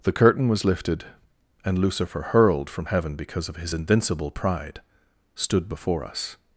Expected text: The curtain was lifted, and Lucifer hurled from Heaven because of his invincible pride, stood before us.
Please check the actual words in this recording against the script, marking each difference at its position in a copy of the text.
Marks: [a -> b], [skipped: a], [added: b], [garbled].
The curtain was lifted, and Lucifer hurled from Heaven because of his invincible pride, stood before us.